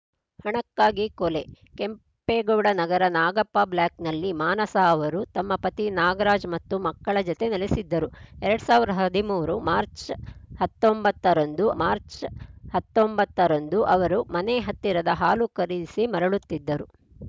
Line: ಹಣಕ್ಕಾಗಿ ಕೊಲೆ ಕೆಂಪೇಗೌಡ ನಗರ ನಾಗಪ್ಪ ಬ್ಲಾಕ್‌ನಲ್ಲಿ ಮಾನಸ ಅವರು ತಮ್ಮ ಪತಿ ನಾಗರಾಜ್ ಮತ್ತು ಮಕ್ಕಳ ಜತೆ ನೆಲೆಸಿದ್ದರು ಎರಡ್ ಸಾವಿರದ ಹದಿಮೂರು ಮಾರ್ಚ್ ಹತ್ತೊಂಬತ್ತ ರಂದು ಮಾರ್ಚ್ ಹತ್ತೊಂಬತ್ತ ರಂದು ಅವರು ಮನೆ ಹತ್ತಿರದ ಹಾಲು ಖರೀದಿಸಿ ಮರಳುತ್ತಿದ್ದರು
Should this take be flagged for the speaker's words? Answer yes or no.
no